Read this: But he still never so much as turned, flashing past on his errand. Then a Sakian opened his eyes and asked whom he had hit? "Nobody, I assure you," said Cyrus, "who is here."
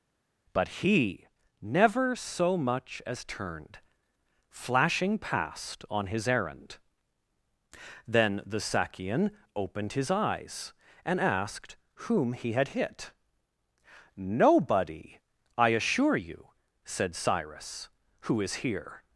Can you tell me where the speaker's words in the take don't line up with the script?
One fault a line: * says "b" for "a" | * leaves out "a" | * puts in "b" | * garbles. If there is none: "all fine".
* leaves out "still"
* says "the" for "a"